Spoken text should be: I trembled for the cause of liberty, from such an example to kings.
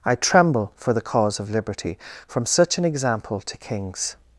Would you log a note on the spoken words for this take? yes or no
yes